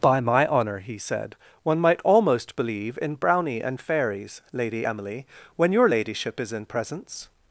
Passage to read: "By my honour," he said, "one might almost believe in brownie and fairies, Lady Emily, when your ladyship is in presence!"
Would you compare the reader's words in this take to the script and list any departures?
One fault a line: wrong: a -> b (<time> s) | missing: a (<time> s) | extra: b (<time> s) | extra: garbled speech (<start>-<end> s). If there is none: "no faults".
no faults